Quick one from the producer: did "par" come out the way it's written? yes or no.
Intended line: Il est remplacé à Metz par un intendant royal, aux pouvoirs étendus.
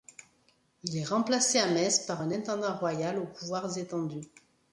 yes